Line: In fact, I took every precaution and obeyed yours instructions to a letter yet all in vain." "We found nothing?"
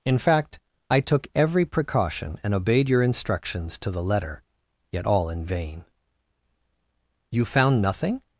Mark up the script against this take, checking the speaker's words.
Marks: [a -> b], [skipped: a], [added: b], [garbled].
In fact, I took every precaution and obeyed [yours -> your] instructions to [a -> the] letter yet all in vain." ["We -> You] found nothing?"